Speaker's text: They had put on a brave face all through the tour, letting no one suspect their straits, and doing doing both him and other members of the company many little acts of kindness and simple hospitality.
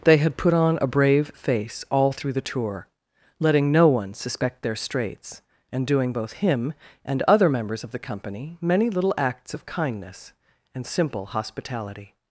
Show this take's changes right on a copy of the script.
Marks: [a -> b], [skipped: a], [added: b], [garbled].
They had put on a brave face all through the tour, letting no one suspect their straits, and doing [skipped: doing] both him and other members of the company many little acts of kindness and simple hospitality.